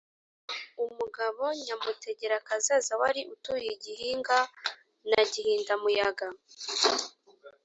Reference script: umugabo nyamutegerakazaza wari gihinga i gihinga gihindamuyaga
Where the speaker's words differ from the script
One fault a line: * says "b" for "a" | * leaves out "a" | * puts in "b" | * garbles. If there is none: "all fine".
* says "utuye" for "gihinga"
* puts in "na"